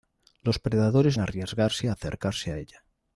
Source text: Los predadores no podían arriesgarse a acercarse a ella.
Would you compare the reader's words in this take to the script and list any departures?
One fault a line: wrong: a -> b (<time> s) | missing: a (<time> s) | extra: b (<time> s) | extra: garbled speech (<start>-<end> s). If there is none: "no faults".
missing: no podían (1.2 s)